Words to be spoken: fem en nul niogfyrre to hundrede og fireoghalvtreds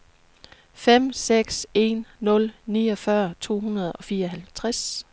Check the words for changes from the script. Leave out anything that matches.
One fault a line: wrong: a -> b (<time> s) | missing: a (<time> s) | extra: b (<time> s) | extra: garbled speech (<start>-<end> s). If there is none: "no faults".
extra: seks (1.1 s)